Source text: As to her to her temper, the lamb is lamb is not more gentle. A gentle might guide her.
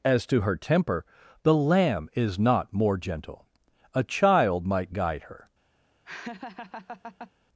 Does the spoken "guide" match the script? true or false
true